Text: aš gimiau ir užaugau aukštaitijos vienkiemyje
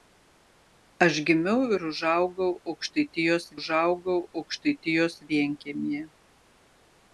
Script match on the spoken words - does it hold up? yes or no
no